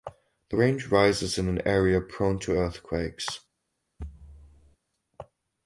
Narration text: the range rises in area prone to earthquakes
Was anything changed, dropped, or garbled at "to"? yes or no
no